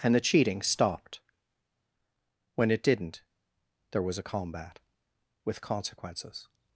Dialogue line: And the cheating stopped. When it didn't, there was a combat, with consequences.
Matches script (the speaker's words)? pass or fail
pass